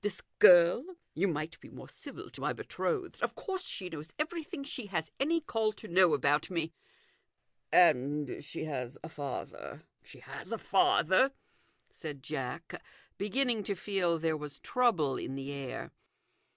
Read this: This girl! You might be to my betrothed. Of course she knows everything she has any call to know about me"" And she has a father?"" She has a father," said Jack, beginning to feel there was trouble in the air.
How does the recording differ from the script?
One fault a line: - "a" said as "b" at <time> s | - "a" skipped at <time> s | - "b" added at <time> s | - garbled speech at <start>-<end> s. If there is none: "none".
- "more civil" added at 1.7 s